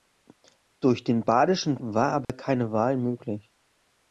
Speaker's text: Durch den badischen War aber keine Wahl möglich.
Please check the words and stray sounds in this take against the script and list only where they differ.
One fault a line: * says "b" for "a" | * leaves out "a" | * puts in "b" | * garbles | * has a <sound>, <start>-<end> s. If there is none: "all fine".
* has a dropout, 2.2-2.3 s